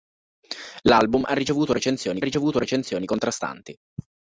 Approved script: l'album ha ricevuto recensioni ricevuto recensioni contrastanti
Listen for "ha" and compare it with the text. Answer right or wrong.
right